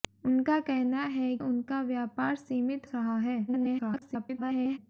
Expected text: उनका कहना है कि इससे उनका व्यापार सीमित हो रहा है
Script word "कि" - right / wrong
wrong